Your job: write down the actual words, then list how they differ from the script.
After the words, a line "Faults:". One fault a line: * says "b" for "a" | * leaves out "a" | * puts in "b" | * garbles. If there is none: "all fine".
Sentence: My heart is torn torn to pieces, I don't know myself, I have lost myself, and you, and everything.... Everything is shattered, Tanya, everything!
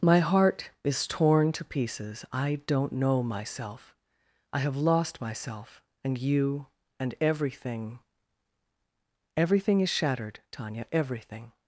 My heart is torn to pieces, I don't know myself, I have lost myself, and you, and everything.... Everything is shattered, Tanya, everything!
Faults:
* leaves out "torn"